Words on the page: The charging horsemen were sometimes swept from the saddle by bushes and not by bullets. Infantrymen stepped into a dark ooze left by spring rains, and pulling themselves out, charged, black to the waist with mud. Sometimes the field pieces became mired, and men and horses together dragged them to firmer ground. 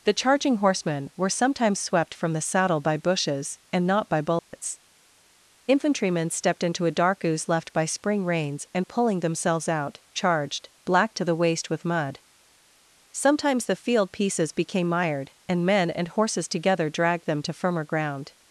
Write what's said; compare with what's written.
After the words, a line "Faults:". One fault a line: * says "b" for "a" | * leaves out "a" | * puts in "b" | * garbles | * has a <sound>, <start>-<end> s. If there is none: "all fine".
The charging horsemen were sometimes swept from the saddle by bushes and not by bullets. Infantrymen stepped into a dark ooze left by spring rains, and pulling themselves out, charged, black to the waist with mud. Sometimes the field pieces became mired, and men and horses together dragged them to firmer ground.
Faults:
* has a dropout, 4.4-4.5 s